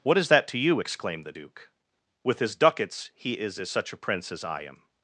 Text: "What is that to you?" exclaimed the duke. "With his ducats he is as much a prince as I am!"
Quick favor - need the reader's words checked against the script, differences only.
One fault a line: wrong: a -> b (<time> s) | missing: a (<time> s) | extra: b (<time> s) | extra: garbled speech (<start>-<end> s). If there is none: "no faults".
wrong: much -> such (3.7 s)